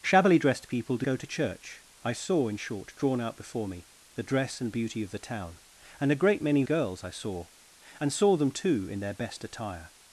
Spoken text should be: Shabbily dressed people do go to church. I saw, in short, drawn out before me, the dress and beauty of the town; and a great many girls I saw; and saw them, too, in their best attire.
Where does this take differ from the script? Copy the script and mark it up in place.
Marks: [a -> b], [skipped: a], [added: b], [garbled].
Shabbily dressed people do go to church. I saw, in short, drawn out before me, the dress and beauty of the town; and a great many girls I saw; and saw them, too, in their best attire.